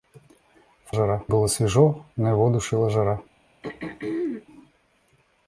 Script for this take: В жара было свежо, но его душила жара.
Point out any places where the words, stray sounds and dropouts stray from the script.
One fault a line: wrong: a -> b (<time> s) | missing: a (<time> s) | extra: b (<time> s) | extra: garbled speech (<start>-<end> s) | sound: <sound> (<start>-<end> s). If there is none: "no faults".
sound: throat clearing (3.6-4.5 s)